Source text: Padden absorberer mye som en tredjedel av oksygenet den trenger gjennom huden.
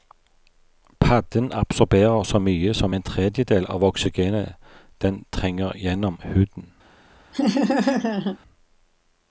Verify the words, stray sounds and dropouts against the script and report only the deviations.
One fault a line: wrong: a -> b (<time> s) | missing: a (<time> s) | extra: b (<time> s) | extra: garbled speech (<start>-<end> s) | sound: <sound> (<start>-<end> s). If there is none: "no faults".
extra: så (2.2 s)
sound: laugh (7.3-8.4 s)